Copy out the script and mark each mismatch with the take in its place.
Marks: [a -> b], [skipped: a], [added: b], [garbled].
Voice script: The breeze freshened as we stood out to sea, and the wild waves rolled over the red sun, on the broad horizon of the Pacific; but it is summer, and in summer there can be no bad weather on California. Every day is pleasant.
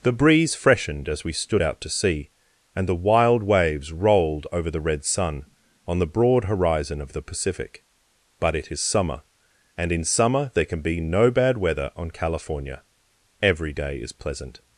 The breeze freshened as we stood out to sea, and the wild waves rolled over the red sun, on the broad horizon of the Pacific; but it is summer, and in summer there can be no bad weather on California. Every day is pleasant.